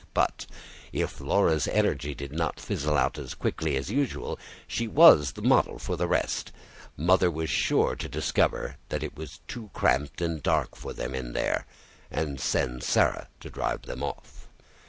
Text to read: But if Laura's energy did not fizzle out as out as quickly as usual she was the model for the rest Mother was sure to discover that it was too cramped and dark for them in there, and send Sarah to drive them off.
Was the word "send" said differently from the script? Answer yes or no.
no